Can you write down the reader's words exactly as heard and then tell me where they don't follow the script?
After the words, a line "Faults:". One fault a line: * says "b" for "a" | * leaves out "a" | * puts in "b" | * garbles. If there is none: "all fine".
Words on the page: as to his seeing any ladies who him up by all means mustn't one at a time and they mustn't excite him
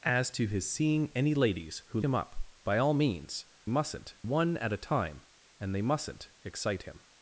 as to his seeing any ladies who him up by all means mustn't one at a time and they mustn't excite him
Faults:
all fine